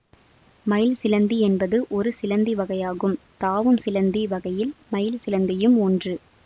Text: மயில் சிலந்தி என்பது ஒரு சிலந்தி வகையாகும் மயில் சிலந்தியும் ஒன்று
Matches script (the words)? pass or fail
fail